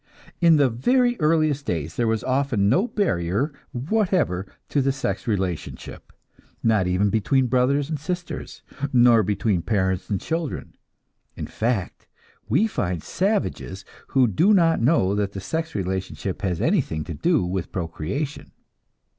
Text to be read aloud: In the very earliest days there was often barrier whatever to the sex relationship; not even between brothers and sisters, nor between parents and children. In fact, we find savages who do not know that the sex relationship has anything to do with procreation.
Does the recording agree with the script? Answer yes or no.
no